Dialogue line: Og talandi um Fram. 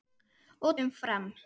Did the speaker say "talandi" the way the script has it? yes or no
no